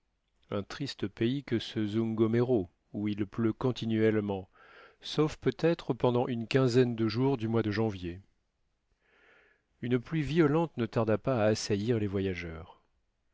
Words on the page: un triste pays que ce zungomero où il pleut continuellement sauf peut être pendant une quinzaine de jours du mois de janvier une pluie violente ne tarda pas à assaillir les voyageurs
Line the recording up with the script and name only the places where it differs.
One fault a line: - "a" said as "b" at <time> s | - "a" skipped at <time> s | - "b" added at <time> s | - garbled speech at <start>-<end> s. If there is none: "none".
none